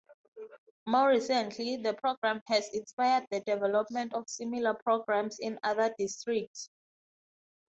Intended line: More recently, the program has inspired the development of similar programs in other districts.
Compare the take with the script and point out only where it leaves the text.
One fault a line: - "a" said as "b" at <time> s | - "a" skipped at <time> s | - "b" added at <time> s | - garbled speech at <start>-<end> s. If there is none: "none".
none